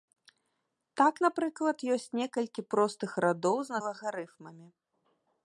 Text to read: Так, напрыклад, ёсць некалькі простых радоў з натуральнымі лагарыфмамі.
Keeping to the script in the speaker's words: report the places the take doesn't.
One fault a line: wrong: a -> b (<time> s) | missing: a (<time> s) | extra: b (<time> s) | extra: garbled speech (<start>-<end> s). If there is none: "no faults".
missing: натуральнымі (3.8 s)